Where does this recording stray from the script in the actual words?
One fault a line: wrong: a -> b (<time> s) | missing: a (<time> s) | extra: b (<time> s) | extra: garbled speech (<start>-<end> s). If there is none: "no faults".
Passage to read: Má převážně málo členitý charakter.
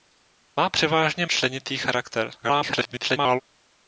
missing: málo (1.2 s)
extra: garbled speech (2.4-3.4 s)